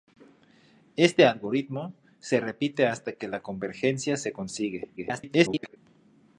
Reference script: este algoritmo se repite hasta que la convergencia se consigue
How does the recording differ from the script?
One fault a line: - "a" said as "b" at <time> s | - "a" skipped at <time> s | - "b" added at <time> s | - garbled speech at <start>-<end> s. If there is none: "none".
- garbled speech at 5.0-5.8 s